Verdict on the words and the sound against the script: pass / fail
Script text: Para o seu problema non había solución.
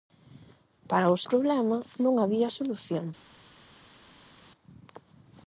fail